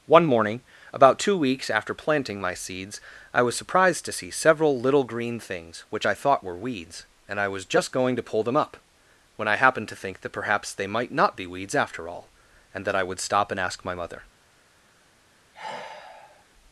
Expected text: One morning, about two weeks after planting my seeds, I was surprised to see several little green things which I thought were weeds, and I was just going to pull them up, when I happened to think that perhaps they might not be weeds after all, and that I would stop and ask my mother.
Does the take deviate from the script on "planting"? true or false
false